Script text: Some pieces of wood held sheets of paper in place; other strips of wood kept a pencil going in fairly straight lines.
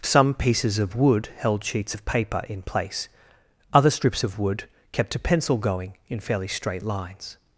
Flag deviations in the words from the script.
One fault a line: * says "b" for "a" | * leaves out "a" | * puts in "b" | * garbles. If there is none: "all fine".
all fine